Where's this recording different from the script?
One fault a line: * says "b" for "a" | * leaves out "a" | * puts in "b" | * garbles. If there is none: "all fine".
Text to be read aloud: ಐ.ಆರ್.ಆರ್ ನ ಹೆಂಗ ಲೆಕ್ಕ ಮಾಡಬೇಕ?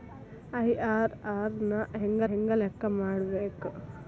* puts in "ಹೆಂಗ"